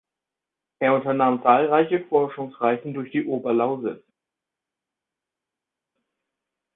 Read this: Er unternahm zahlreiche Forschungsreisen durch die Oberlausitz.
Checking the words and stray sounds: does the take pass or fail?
pass